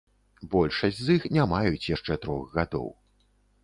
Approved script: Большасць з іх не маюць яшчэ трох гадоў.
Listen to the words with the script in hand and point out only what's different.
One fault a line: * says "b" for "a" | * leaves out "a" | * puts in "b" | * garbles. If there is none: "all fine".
all fine